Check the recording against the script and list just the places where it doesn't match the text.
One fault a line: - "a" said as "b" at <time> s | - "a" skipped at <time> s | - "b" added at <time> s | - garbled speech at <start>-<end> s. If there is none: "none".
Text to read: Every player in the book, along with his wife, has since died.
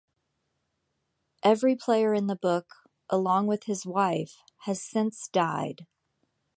none